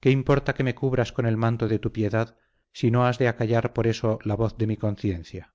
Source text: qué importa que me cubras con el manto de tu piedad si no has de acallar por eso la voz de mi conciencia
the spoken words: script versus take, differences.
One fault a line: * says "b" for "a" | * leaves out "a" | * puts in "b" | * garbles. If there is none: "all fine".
all fine